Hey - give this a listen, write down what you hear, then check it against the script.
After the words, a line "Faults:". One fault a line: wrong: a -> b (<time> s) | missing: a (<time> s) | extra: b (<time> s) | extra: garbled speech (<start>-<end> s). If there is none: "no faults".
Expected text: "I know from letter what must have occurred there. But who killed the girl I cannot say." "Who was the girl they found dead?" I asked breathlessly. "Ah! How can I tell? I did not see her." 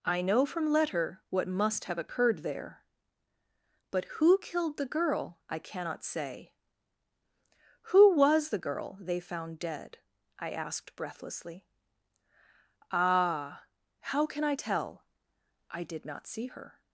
"I know from letter what must have occurred there. But who killed the girl I cannot say." "Who was the girl they found dead?" I asked breathlessly. "Ah! How can I tell? I did not see her."
Faults:
no faults